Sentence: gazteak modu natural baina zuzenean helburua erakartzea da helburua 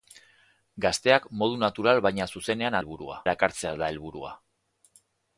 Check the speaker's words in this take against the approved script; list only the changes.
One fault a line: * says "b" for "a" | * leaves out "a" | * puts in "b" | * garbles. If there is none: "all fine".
all fine